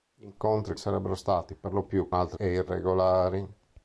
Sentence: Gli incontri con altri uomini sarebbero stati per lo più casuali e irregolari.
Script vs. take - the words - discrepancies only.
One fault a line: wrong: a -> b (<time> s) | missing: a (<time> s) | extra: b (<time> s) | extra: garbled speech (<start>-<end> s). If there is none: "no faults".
missing: con altri uomini (0.8 s)
wrong: casuali -> altri (2.1 s)